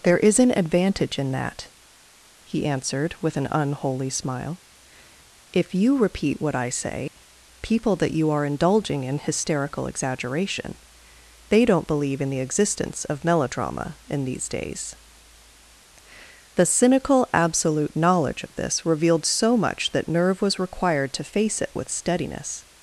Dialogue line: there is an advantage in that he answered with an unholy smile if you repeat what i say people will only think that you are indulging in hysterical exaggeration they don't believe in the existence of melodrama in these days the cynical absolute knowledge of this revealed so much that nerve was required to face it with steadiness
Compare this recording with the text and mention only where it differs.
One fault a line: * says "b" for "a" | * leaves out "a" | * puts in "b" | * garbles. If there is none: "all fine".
* leaves out "will only think"